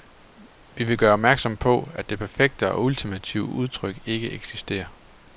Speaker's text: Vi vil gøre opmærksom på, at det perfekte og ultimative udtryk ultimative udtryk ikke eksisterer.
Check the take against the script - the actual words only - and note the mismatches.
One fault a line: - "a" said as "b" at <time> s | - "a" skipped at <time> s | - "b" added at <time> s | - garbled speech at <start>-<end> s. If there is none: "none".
- "ultimative udtryk" skipped at 4.0 s